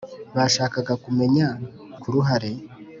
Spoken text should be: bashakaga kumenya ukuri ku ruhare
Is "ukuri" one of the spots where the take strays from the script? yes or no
yes